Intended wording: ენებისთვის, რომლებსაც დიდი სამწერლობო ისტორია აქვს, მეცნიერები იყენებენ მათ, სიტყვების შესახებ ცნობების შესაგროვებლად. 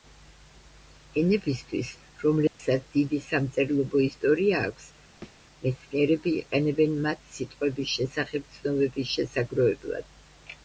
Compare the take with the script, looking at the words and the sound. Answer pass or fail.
fail